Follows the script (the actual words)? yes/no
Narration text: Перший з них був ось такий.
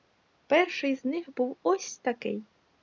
yes